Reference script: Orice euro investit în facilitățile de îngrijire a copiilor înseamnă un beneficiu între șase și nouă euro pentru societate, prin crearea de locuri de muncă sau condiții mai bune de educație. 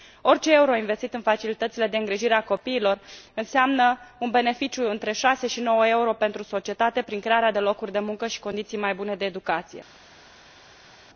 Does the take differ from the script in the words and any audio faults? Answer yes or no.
yes